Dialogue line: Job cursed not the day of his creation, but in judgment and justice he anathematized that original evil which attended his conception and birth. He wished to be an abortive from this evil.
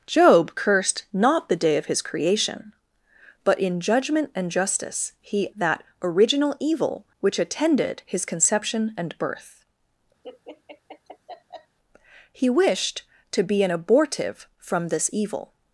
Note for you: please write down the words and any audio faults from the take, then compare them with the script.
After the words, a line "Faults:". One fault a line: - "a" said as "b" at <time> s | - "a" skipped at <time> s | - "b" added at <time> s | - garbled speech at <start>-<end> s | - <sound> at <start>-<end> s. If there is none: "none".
Job cursed not the day of his creation, but in judgment and justice he that original evil which attended his conception and birth. He wished to be an abortive from this evil.
Faults:
- "anathematized" skipped at 5.5 s
- laugh at 10.2-11.8 s